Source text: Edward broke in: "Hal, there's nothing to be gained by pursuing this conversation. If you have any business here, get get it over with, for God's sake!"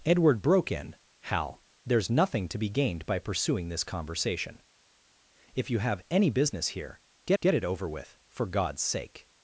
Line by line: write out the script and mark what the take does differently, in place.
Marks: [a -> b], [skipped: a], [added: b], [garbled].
Edward broke in: "Hal, there's nothing to be gained by pursuing this conversation. If you have any business here, get get it over with, for God's sake!"